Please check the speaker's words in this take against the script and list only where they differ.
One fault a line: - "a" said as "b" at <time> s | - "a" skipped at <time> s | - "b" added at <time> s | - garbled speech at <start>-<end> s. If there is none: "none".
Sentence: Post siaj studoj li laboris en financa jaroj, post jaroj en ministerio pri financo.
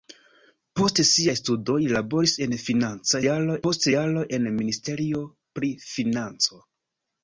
none